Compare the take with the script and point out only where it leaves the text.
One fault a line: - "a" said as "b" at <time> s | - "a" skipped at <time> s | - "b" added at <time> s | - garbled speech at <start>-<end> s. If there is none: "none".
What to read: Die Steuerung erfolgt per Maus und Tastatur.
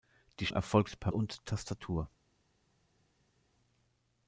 - "Steuerung" skipped at 0.5 s
- "Maus" skipped at 1.1 s